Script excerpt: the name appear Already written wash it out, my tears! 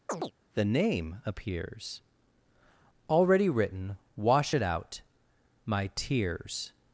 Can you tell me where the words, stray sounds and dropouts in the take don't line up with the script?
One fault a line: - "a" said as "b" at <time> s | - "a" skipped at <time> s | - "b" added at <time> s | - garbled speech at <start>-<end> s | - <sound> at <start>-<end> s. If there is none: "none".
- chirp at 0.1-0.3 s
- "appear" said as "appears" at 1.2 s